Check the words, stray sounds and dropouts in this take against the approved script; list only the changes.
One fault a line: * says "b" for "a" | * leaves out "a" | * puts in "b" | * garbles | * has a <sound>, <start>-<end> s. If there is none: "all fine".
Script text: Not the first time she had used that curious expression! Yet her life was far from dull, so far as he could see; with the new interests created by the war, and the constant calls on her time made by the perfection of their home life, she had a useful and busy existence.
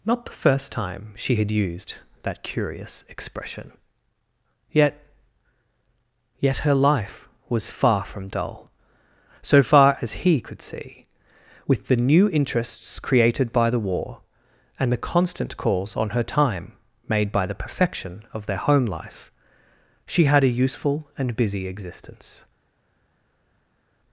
* puts in "Yet"